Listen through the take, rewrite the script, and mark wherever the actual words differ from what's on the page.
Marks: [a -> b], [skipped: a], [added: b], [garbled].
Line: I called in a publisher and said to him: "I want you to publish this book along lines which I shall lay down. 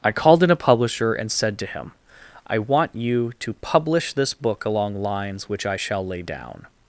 I called in a publisher and said to him: "I want you to publish this book along lines which I shall lay down.